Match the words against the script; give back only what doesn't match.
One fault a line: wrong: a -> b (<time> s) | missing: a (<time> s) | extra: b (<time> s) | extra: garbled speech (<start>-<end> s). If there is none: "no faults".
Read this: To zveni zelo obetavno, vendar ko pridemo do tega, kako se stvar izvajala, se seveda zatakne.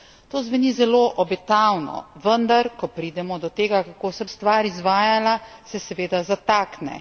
no faults